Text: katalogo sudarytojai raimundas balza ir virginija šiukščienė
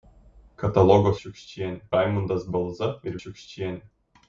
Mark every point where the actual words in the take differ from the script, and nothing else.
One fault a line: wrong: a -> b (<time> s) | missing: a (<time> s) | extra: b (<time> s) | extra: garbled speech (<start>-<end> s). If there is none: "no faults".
wrong: sudarytojai -> šiukščienė (1.2 s)
missing: virginija (3.2 s)